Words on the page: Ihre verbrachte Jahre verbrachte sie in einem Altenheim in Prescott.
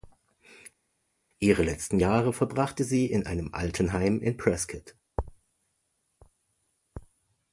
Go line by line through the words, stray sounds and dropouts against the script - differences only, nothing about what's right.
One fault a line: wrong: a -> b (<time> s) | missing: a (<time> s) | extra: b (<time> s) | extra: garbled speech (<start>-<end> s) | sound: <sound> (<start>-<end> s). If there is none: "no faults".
wrong: verbrachte -> letzten (1.6 s)